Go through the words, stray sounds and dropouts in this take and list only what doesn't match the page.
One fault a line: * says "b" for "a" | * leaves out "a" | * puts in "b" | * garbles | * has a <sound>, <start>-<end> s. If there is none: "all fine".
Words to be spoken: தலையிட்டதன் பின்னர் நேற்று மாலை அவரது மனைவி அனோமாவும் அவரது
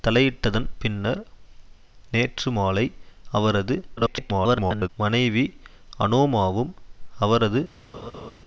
* garbles
* has a laugh, 7.9-8.3 s